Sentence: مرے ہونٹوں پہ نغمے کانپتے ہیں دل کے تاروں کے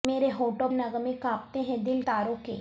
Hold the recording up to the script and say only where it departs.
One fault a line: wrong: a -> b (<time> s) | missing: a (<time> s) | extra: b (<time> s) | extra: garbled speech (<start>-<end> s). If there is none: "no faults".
missing: پہ (0.7 s)
missing: کے (2.0 s)